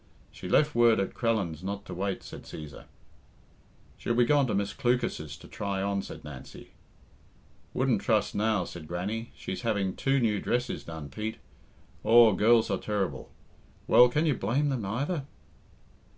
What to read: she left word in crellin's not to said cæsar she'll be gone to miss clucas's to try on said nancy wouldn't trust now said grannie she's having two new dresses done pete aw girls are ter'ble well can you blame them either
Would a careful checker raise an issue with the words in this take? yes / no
yes